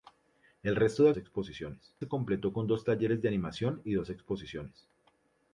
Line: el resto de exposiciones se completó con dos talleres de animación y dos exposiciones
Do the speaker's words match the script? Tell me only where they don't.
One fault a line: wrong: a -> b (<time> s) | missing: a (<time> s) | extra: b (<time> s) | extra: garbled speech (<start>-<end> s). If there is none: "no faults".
no faults